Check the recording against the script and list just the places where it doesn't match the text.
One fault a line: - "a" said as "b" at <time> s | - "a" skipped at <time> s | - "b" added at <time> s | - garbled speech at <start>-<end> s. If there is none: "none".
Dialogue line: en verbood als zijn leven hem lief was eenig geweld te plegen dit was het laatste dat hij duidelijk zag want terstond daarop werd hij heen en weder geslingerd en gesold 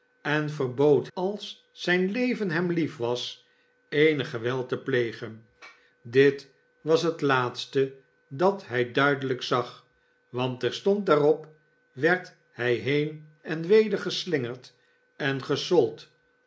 none